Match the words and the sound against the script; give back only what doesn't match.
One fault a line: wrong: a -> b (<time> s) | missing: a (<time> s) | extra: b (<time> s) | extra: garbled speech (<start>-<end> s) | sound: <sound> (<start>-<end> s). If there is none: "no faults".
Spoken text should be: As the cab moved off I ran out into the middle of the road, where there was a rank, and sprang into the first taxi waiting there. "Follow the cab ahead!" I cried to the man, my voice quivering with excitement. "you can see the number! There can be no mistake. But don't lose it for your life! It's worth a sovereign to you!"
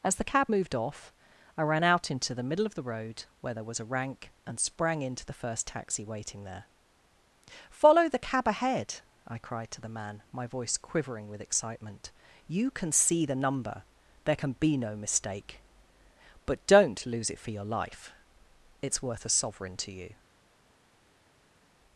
no faults